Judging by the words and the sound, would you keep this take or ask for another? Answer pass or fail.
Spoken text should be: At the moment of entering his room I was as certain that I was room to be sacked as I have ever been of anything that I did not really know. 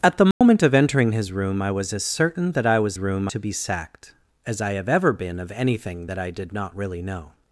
fail